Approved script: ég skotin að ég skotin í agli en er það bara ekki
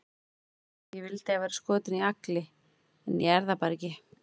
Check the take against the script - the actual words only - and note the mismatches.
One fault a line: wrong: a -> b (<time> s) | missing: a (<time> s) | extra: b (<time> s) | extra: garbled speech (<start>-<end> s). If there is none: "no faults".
wrong: skotin -> vildi (1.1 s)
extra: væri (1.4 s)
extra: ég (3.3 s)